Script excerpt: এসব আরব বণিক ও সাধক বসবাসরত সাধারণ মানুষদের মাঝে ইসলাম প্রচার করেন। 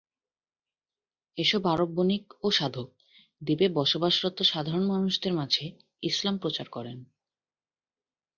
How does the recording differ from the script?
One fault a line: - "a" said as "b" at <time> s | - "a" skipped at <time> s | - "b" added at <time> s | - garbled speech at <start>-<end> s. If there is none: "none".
- "দ্বীপে" added at 3.4 s